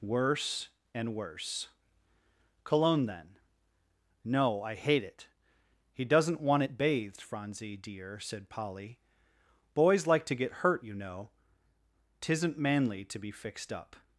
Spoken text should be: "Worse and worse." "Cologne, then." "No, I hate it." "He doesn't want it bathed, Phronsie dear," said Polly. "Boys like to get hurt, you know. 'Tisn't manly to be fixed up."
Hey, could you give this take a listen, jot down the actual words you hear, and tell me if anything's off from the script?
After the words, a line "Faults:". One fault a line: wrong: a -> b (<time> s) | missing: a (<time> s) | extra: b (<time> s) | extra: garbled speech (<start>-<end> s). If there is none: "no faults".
"Worse and worse." "Cologne, then." "No, I hate it." "He doesn't want it bathed, Phronsie dear," said Polly. "Boys like to get hurt, you know. 'Tisn't manly to be fixed up."
Faults:
no faults